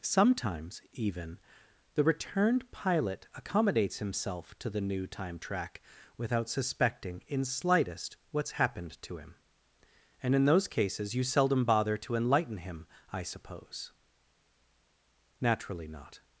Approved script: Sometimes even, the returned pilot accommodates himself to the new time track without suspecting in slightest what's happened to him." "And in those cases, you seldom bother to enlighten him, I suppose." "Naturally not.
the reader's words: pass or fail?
pass